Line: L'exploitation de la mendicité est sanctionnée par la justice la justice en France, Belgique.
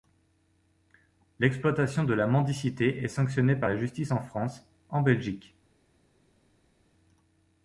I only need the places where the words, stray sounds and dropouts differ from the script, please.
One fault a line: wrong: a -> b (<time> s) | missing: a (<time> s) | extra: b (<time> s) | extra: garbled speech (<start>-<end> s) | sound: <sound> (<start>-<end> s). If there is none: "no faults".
wrong: la justice -> en France (4.1 s)
missing: France (5.0 s)